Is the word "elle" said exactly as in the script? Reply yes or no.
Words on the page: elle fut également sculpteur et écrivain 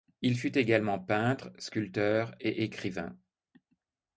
no